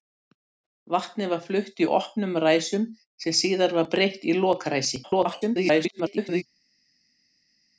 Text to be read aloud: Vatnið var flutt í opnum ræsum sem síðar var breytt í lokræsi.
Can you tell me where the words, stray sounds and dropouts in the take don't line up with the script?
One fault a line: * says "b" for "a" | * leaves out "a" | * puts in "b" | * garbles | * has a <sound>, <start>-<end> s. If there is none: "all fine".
* garbles